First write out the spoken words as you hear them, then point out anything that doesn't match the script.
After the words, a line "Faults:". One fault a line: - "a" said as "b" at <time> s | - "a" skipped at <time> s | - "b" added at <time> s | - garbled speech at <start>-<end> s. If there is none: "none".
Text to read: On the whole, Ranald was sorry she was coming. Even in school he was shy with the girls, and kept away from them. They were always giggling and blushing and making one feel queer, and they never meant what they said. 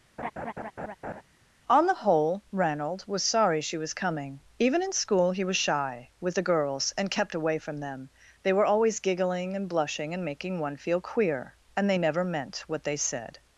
On the whole, Ranald was sorry she was coming. Even in school he was shy with the girls, and kept away from them. They were always giggling and blushing and making one feel queer, and they never meant what they said.
Faults:
none